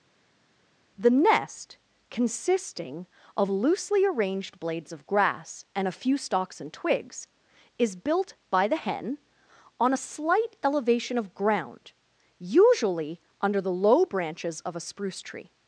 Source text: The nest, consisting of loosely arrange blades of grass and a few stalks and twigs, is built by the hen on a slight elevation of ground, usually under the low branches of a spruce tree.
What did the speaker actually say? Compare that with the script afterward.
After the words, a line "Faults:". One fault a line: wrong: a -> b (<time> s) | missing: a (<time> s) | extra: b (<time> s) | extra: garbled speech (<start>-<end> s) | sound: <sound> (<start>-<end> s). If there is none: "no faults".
The nest, consisting of loosely arranged blades of grass and a few stalks and twigs, is built by the hen on a slight elevation of ground, usually under the low branches of a spruce tree.
Faults:
wrong: arrange -> arranged (4.0 s)